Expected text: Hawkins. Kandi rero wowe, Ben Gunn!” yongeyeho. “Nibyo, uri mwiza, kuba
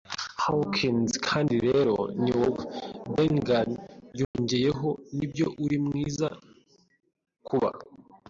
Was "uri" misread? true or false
false